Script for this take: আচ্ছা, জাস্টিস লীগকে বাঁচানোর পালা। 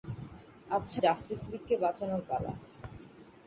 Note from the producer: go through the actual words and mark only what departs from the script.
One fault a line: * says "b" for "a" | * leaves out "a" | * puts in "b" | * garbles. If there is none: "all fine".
all fine